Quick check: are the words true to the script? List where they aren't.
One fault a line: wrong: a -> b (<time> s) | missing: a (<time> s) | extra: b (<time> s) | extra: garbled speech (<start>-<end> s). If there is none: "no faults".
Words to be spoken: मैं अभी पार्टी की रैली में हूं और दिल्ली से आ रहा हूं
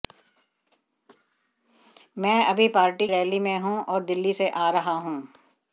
missing: की (3.1 s)